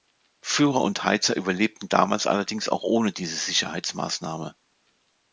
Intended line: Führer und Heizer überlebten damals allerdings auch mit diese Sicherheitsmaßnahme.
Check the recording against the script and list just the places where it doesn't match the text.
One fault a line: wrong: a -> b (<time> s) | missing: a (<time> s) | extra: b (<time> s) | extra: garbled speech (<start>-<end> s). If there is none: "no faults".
wrong: mit -> ohne (2.8 s)